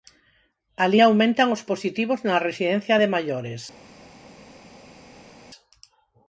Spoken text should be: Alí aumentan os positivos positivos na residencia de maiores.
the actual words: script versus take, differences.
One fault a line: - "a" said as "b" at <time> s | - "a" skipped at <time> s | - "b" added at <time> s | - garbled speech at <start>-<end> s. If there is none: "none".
- "positivos" skipped at 2.2 s